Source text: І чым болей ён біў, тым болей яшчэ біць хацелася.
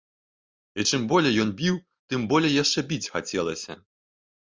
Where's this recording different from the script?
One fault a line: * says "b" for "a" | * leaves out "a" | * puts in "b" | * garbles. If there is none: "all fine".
all fine